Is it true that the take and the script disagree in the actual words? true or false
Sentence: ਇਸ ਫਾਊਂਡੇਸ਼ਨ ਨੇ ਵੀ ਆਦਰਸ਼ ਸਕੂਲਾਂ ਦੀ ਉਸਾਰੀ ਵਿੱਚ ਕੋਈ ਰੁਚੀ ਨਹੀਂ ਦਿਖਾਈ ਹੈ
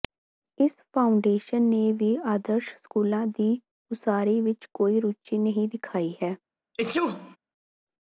false